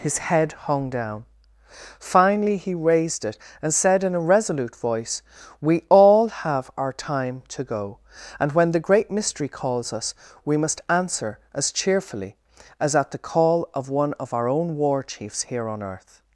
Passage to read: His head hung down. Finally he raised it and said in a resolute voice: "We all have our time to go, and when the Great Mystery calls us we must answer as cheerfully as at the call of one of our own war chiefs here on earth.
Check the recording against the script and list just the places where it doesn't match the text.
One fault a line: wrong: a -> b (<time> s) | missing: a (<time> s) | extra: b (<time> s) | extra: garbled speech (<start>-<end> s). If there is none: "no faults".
no faults